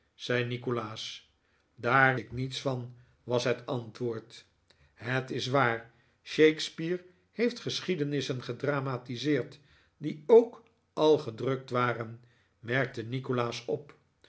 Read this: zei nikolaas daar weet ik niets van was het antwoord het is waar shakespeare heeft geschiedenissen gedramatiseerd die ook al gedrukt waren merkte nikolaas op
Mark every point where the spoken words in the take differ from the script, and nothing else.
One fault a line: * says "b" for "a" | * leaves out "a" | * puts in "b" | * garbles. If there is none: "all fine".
* leaves out "weet"